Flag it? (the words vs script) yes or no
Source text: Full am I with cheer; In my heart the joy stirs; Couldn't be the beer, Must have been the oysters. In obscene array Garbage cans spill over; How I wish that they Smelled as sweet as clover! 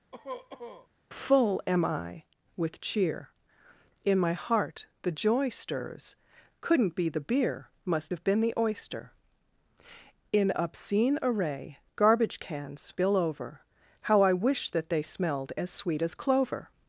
yes